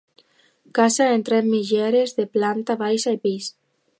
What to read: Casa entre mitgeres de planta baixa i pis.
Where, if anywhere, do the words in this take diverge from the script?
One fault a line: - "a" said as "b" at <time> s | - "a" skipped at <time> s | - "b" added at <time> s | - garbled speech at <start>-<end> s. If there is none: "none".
none